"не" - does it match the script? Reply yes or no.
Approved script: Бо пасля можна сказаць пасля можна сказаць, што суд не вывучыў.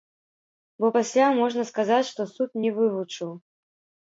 yes